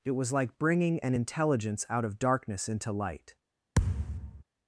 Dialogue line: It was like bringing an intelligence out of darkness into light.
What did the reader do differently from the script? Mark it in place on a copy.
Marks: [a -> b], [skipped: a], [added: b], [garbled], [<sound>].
It was like bringing an intelligence out of darkness into light. [thud]